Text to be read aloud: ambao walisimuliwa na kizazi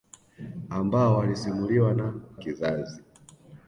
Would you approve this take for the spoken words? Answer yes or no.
yes